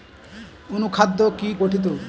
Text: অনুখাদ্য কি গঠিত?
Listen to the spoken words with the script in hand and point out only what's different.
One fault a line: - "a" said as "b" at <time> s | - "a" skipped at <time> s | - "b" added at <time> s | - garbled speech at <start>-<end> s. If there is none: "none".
none